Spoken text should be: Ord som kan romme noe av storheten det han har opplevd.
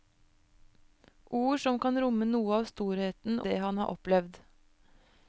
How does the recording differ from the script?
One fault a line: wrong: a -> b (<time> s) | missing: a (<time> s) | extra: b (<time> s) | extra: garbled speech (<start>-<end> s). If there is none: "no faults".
no faults